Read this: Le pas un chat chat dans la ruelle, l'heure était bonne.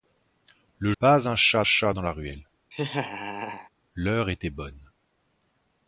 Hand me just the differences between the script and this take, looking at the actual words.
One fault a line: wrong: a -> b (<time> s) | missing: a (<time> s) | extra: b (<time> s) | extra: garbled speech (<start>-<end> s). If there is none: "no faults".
no faults